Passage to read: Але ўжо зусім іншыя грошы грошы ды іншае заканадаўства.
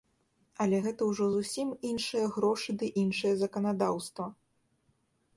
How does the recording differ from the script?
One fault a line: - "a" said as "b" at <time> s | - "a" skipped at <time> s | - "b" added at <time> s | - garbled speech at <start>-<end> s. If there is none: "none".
- "гэта" added at 0.8 s
- "грошы" skipped at 2.7 s